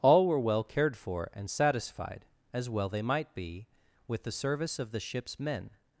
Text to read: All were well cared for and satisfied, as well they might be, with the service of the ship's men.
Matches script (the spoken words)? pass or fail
pass